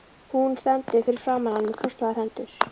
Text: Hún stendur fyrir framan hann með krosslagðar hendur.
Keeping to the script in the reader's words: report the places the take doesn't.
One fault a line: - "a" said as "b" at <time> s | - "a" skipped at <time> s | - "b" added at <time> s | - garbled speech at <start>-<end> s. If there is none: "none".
none